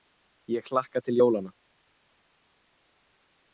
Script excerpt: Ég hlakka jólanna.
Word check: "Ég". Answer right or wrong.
right